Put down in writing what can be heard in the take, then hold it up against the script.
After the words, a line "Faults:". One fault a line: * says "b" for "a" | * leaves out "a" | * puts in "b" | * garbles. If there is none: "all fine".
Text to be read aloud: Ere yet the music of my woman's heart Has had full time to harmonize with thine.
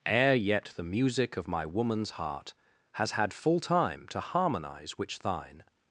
Ere yet the music of my woman's heart Has had full time to harmonize which thine.
Faults:
* says "which" for "with"